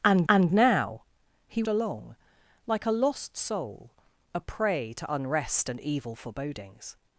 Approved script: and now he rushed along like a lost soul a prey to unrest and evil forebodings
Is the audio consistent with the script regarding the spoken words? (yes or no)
no